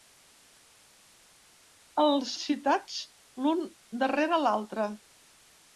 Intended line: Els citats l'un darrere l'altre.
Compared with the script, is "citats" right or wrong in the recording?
right